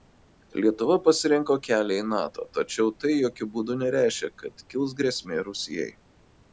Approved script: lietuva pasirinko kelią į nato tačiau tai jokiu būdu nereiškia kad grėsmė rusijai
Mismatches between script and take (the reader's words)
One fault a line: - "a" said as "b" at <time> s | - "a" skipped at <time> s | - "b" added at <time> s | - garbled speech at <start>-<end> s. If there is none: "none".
- "kils" added at 4.7 s